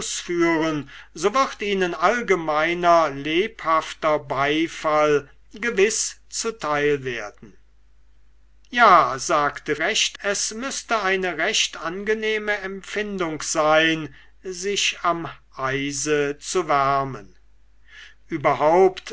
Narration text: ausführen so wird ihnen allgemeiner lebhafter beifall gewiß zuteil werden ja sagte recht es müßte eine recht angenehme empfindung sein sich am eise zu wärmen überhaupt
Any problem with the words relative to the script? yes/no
no